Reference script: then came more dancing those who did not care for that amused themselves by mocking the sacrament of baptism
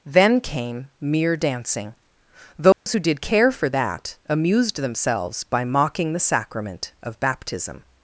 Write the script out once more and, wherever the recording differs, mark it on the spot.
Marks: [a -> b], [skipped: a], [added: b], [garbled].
then came [more -> mere] dancing those who did [skipped: not] care for that amused themselves by mocking the sacrament of baptism